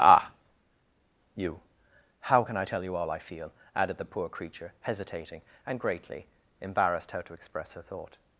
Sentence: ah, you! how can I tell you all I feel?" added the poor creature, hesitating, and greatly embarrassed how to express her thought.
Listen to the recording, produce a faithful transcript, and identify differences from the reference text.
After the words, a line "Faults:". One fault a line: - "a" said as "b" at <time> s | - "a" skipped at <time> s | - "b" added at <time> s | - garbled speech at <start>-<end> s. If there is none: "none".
ah, you! how can I tell you all I feel?" added the poor creature, hesitating, and greatly embarrassed how to express her thought.
Faults:
none